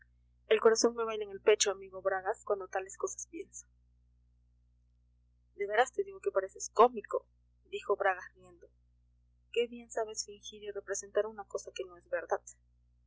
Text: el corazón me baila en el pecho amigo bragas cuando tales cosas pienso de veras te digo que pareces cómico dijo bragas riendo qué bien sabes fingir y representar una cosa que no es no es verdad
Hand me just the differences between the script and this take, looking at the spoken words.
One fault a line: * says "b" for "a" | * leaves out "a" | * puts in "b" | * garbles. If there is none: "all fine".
* leaves out "no es"